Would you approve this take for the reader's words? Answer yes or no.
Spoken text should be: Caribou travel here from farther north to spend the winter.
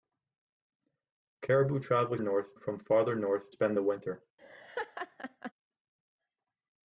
no